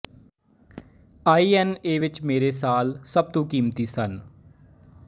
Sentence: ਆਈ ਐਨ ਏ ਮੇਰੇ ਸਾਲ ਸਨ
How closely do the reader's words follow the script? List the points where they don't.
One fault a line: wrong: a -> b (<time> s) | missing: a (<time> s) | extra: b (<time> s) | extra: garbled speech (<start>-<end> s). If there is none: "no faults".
extra: ਵਿੱਚ (2.0 s)
extra: ਸਭ ਤੋਂ ਕੀਮਤੀ (3.0 s)